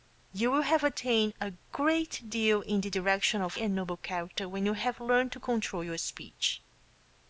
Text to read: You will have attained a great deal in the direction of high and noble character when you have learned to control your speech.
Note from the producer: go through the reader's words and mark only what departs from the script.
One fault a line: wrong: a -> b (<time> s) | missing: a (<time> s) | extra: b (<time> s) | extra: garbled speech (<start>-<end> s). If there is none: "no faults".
missing: high (3.6 s)